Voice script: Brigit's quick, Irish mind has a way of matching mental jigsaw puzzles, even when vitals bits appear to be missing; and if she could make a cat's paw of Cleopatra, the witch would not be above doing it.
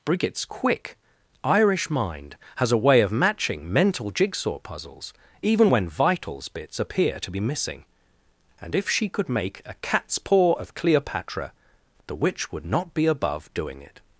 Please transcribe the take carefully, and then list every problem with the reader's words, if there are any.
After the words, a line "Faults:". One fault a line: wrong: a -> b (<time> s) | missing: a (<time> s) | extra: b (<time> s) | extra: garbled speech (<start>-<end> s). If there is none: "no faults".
Brigit's quick, Irish mind has a way of matching mental jigsaw puzzles, even when vitals bits appear to be missing; and if she could make a cat's paw of Cleopatra, the witch would not be above doing it.
Faults:
no faults